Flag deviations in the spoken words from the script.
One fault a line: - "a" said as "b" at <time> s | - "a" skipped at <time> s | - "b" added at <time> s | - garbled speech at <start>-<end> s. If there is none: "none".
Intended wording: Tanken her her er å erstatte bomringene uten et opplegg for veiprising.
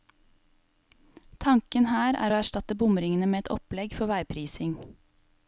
- "her" skipped at 2.2 s
- "uten" said as "med" at 3.3 s